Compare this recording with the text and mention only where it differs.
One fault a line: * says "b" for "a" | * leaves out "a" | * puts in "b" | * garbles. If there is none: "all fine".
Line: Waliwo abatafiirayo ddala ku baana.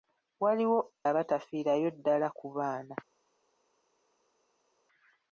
all fine